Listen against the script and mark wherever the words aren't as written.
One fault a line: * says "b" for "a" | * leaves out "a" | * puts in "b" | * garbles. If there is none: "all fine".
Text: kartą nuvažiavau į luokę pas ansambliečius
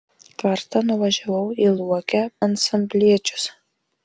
* leaves out "pas"